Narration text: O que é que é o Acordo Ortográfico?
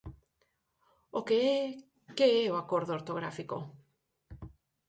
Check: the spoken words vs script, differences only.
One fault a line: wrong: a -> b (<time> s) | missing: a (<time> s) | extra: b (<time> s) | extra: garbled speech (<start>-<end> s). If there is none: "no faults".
no faults